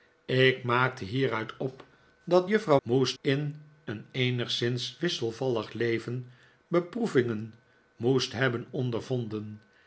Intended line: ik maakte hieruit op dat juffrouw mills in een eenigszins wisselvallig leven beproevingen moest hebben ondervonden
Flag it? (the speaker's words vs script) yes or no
yes